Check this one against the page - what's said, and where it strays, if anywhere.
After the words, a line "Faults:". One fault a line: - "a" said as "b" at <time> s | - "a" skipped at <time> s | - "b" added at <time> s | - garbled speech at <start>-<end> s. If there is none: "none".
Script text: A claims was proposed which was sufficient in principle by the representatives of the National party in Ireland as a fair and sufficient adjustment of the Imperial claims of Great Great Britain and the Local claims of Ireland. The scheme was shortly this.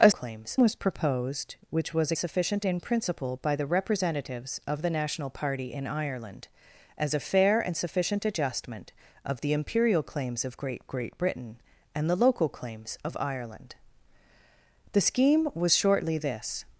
A claims was proposed which was sufficient in principle by the representatives of the National party in Ireland as a fair and sufficient adjustment of the Imperial claims of Great Great Britain and the Local claims of Ireland. The scheme was shortly this.
Faults:
none